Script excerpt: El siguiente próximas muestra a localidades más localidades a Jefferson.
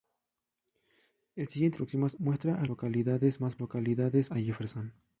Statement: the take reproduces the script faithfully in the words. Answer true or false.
true